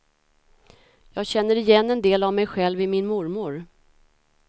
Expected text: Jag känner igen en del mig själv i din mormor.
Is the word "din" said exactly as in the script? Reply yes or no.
no